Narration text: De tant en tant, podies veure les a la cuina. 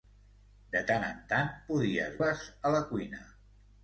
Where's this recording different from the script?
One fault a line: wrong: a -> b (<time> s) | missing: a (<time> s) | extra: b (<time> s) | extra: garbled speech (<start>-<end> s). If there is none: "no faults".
missing: veure (2.2 s)